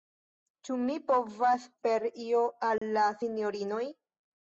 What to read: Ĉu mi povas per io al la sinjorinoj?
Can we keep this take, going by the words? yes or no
yes